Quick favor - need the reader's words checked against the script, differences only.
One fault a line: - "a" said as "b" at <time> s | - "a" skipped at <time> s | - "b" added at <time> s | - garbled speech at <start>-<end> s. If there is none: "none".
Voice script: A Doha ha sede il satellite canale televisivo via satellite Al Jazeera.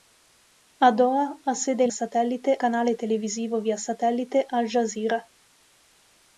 none